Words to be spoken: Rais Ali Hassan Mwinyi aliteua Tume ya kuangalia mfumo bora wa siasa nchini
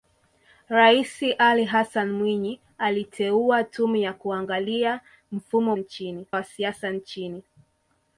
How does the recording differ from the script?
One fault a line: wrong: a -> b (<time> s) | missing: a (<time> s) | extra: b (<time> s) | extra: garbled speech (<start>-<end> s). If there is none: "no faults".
wrong: bora -> nchini (5.7 s)